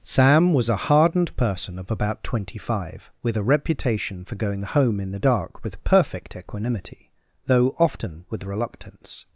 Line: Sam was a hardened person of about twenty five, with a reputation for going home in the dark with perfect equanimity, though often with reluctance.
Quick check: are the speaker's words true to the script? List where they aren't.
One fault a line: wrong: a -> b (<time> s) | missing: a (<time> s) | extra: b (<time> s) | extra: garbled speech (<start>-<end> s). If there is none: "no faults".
no faults